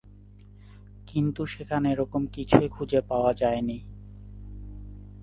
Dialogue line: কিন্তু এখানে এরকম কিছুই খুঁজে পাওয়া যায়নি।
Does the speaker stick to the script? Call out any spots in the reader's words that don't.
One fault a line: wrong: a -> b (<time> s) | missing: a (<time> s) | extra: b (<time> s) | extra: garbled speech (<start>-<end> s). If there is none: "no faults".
wrong: এখানে -> সেখানে (1.4 s)